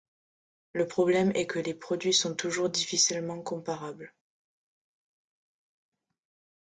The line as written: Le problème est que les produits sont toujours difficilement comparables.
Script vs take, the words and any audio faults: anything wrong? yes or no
no